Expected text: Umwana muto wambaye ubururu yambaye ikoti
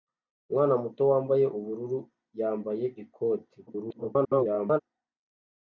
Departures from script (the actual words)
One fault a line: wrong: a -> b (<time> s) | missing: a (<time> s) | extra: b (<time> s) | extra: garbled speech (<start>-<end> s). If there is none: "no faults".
extra: garbled speech (3.7-4.8 s)